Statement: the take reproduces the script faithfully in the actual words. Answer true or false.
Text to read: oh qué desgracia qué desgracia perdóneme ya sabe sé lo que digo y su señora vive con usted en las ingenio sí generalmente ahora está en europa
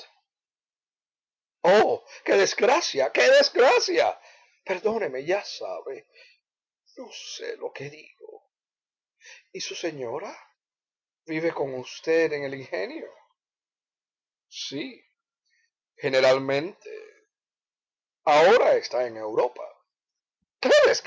false